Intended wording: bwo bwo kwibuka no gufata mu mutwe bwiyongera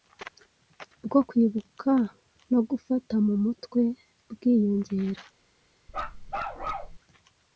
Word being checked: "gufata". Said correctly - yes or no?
yes